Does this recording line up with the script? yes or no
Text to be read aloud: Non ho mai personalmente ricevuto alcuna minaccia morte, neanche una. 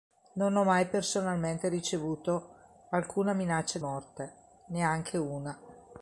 yes